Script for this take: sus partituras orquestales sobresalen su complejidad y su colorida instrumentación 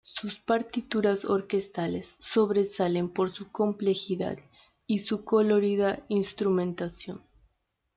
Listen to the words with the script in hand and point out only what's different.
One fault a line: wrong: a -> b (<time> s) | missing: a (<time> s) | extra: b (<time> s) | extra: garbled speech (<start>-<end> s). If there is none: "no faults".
extra: por (3.1 s)